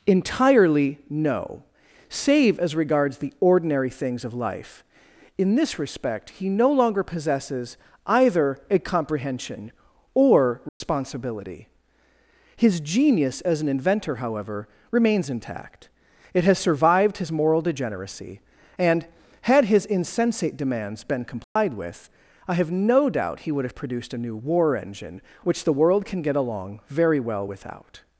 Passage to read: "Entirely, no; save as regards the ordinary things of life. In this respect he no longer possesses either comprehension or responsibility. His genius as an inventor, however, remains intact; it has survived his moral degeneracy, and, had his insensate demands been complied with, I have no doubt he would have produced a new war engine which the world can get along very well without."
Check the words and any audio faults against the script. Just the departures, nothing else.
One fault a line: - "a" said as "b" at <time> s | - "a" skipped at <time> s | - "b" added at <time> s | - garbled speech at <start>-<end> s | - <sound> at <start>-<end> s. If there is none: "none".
- "a" added at 8.7 s
- dropout at 10.7-10.8 s
- dropout at 21.4-21.6 s